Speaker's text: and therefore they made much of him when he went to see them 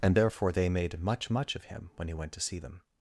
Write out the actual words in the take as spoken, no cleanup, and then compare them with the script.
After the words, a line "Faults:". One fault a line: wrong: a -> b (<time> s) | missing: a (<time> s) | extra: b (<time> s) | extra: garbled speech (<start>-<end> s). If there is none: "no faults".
and therefore they made much much of him when he went to see them
Faults:
extra: much (1.3 s)